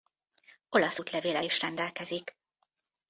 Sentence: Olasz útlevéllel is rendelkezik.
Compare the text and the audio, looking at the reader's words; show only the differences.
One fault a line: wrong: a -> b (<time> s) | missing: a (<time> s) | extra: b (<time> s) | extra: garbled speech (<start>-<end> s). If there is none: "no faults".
no faults